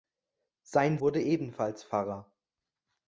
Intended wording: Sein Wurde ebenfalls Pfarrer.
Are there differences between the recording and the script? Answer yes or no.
no